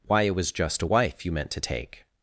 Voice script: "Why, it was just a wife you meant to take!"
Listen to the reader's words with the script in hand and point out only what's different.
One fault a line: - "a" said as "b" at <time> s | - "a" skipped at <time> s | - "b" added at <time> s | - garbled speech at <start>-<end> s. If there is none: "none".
none